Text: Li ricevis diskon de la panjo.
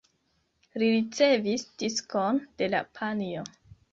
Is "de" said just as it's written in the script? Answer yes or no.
yes